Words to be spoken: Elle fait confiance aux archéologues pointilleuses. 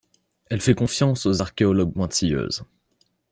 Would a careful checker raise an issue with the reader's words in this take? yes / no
no